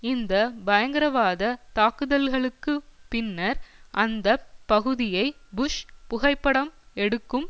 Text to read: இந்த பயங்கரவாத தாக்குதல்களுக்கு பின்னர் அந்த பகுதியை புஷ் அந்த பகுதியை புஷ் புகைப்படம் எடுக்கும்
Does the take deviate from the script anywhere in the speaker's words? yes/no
yes